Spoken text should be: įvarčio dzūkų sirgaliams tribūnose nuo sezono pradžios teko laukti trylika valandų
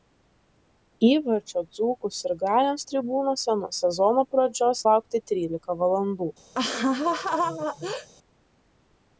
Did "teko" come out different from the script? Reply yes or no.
yes